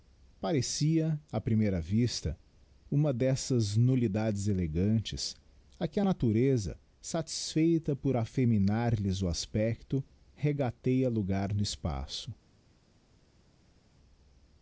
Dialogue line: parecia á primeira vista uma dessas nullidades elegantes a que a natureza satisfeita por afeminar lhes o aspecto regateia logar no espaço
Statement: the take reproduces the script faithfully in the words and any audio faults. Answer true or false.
true